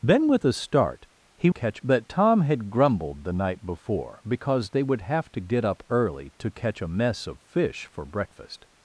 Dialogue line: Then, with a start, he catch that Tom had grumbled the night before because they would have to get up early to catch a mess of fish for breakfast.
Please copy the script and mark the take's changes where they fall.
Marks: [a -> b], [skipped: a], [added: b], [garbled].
Then, with a start, he catch that Tom had grumbled the night before because they would have to get up early to catch a mess of fish for breakfast.